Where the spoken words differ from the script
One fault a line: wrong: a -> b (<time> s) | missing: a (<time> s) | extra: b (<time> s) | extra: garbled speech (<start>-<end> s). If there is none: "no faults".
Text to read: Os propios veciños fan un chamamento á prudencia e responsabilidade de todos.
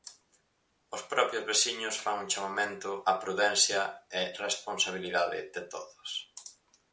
no faults